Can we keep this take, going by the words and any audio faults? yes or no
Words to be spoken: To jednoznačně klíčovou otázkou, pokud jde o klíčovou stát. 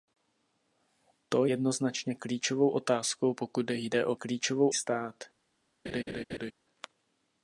no